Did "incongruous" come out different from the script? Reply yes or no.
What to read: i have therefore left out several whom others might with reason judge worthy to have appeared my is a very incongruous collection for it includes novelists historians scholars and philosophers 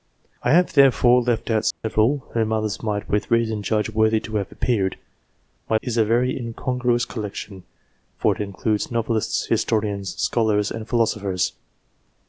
no